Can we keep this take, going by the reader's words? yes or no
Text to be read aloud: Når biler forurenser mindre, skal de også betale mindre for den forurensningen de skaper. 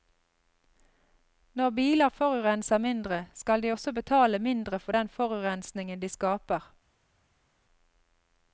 yes